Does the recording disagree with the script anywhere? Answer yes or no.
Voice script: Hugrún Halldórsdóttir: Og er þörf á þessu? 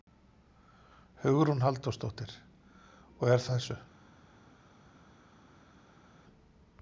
yes